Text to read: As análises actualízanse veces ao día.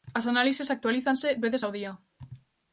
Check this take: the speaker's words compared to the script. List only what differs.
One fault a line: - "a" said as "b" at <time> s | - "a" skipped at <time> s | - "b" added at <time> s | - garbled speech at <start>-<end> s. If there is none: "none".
none